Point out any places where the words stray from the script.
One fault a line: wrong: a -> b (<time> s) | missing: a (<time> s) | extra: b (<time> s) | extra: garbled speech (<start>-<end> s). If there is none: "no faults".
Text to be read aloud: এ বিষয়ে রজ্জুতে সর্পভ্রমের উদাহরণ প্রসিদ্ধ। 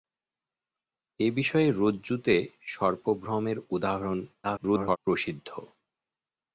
extra: garbled speech (4.4-5.0 s)